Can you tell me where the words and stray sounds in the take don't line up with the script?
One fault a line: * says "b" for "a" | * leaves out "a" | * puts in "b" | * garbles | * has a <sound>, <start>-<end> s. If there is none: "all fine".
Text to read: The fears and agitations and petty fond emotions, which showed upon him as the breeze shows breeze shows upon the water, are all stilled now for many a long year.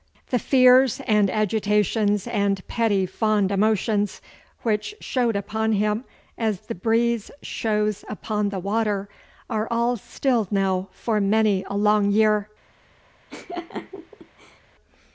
* leaves out "breeze shows"
* has a laugh, 13.3-14.6 s